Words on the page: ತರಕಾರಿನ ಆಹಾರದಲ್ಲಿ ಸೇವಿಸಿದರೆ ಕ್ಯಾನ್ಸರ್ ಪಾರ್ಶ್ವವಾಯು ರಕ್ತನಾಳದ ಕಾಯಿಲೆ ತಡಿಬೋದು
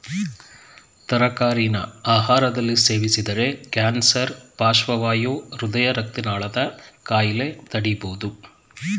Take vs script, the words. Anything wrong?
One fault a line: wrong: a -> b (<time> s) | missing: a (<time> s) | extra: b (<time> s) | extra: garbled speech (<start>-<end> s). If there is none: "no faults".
extra: ಹೃದಯ (5.6 s)